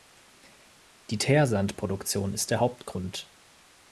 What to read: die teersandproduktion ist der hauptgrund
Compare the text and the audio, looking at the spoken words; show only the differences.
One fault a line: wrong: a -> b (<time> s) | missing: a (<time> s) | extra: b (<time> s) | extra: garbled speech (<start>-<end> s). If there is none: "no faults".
no faults